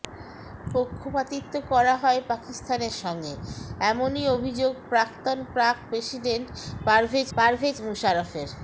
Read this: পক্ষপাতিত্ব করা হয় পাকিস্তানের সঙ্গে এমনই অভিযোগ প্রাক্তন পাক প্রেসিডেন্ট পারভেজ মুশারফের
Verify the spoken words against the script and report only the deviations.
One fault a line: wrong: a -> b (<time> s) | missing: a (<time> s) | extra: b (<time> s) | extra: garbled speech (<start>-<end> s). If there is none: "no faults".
extra: পারভেজ (7.4 s)